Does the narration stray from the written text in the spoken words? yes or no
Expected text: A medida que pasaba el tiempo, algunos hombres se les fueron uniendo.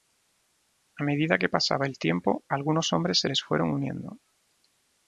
no